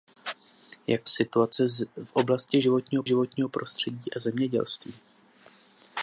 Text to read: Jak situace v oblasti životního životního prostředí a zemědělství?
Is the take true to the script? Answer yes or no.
yes